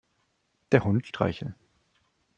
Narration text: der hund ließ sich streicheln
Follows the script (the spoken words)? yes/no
no